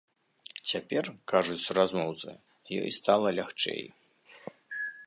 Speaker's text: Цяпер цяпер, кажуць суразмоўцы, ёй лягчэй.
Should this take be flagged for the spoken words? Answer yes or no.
yes